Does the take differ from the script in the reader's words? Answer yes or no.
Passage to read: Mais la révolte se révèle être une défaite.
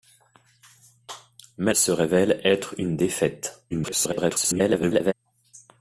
yes